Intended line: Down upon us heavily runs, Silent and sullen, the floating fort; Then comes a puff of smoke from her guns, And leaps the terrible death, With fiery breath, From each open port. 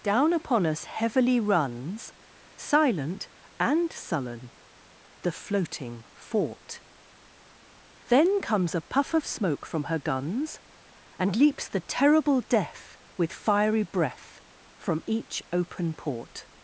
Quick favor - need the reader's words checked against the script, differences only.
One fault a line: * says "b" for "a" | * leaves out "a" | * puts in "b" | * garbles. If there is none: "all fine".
all fine